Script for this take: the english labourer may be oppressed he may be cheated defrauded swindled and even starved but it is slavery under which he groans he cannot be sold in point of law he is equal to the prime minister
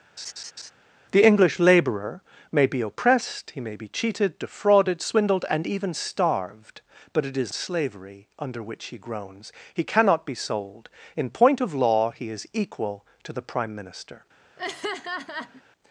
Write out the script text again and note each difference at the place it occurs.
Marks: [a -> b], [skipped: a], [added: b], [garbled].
the english labourer may be oppressed he may be cheated defrauded swindled and even starved but it is slavery under which he groans he cannot be sold in point of law he is equal to the prime minister